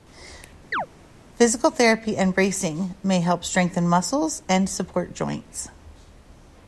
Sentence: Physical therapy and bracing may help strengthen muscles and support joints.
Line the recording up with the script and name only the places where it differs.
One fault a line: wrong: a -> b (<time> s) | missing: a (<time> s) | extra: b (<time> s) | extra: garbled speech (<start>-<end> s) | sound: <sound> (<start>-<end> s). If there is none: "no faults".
sound: chirp (0.7-0.9 s)